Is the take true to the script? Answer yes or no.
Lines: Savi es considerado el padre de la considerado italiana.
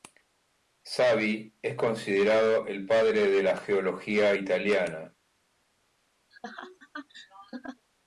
no